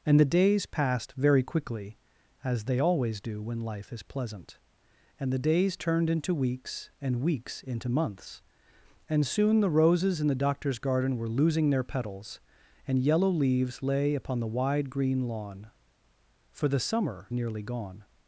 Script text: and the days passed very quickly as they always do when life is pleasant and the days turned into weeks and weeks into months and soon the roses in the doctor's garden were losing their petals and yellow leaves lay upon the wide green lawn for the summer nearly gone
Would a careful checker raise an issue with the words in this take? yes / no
no